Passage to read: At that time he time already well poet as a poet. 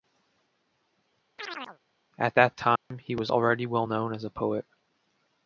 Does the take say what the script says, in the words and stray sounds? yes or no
no